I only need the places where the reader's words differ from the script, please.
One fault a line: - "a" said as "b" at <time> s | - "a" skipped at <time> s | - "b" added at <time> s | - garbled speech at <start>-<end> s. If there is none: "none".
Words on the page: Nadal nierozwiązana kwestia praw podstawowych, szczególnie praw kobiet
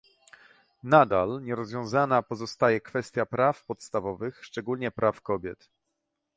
- "pozostaje" added at 2.2 s